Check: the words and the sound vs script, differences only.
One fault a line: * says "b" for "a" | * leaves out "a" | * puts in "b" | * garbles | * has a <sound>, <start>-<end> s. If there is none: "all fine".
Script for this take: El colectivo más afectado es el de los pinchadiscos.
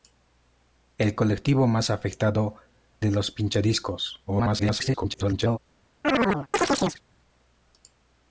* leaves out "es el"
* garbles
* has a chirp, 6.0-7.0 s